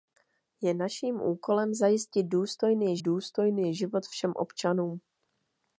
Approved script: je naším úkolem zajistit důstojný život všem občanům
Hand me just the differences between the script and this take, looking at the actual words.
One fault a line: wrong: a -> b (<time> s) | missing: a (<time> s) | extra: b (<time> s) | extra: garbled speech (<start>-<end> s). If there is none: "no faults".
extra: důstojný (3.0 s)